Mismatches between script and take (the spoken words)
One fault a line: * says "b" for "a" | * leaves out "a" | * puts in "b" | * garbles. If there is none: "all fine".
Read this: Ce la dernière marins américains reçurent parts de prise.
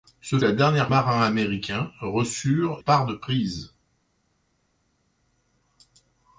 all fine